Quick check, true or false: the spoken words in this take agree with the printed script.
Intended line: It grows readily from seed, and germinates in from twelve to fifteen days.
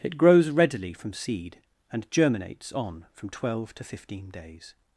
false